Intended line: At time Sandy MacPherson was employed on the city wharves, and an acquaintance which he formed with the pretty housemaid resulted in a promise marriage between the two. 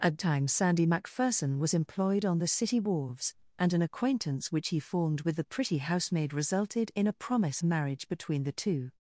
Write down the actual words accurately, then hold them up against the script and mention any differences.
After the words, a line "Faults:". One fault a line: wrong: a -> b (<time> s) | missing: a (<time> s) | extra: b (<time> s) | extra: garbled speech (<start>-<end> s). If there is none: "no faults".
At time Sandy MacPherson was employed on the city wharves, and an acquaintance which he formed with the pretty housemaid resulted in a promise marriage between the two.
Faults:
no faults